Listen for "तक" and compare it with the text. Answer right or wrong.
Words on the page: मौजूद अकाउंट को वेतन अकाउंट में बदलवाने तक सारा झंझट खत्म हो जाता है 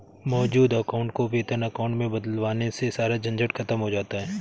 wrong